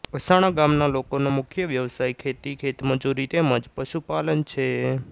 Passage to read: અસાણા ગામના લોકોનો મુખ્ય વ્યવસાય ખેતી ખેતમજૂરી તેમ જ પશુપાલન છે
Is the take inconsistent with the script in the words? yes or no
no